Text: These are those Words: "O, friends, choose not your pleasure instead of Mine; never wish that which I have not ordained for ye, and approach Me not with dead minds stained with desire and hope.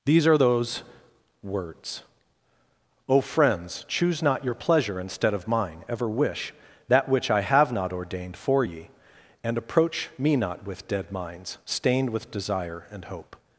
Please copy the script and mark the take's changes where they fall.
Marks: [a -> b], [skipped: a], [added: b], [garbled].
These are those Words: "O, friends, choose not your pleasure instead of Mine; [never -> ever] wish that which I have not ordained for ye, and approach Me not with dead minds stained with desire and hope.